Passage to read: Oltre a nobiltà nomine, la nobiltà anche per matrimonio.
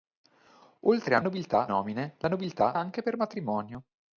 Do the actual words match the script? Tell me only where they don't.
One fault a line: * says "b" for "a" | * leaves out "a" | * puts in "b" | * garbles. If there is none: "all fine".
all fine